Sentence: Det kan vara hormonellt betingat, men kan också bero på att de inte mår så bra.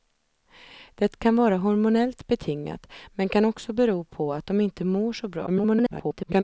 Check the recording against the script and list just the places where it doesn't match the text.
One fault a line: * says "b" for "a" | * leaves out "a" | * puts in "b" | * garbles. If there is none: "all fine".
* garbles